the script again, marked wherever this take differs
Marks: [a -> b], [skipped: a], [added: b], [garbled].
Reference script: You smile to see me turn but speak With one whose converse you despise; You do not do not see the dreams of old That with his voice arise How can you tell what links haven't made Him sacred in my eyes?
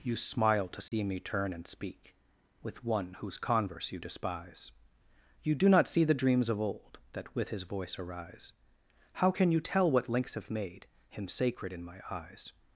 You smile to see me turn [but -> and] speak With one whose converse you despise; You do not [skipped: do not] see the dreams of old That with his voice arise How can you tell what links [haven't -> have] made Him sacred in my eyes?